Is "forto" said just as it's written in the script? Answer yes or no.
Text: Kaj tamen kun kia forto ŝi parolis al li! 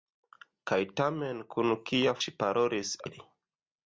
no